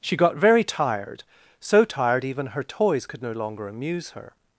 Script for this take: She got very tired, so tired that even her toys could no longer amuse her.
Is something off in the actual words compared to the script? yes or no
yes